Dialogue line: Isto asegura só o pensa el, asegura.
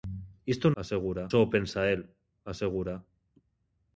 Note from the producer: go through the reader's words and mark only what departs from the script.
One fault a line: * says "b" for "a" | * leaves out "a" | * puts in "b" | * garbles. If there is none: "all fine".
all fine